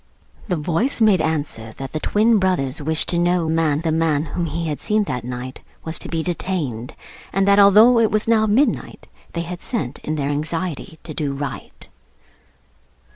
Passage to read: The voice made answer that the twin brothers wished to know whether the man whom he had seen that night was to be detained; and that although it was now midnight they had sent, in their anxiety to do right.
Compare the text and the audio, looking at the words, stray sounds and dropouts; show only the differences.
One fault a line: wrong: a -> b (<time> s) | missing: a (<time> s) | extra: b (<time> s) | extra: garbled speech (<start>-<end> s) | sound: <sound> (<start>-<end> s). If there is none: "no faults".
wrong: whether -> man (3.5 s)